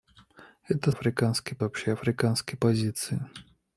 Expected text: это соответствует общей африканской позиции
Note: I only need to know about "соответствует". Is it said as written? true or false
false